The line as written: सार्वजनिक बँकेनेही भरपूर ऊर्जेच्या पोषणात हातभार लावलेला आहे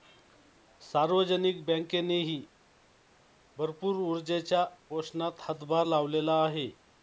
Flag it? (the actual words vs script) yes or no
no